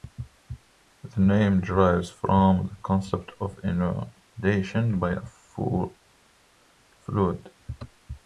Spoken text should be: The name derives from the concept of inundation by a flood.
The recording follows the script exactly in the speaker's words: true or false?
true